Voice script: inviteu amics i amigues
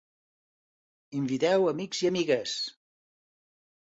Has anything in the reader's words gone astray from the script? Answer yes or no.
no